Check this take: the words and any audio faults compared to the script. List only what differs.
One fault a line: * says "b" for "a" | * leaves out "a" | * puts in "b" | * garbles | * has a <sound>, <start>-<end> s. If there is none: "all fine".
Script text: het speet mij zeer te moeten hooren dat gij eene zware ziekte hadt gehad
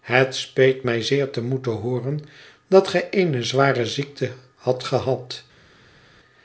all fine